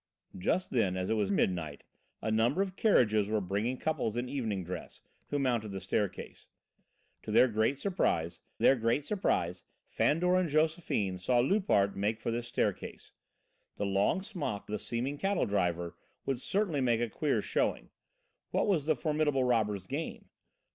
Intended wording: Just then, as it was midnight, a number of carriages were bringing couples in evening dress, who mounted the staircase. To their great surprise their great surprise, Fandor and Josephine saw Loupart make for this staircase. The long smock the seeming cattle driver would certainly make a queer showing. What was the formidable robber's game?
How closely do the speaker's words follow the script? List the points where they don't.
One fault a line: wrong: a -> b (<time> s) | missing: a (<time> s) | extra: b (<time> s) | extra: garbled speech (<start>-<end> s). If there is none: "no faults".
no faults